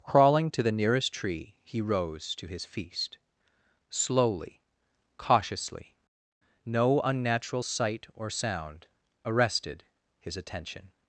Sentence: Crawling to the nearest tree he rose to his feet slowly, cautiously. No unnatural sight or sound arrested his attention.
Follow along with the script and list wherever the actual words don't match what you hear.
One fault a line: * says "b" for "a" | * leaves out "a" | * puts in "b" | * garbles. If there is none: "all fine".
* says "feast" for "feet"